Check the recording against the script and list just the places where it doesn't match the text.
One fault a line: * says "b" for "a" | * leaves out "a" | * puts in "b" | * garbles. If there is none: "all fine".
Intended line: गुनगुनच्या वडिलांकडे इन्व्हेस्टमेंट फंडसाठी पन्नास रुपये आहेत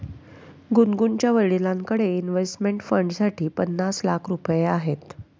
* puts in "लाख"